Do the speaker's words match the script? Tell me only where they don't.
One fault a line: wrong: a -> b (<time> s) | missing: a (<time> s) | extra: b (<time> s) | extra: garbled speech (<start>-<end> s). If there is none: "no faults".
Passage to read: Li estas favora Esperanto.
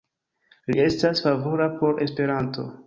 extra: por (1.8 s)